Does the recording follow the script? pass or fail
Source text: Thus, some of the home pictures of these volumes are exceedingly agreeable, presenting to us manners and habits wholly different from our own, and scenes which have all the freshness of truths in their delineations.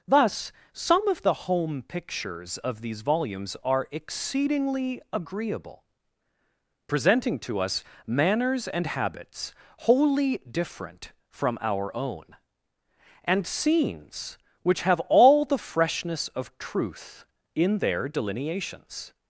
fail